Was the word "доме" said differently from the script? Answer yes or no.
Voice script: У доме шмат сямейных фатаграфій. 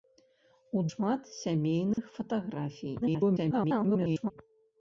yes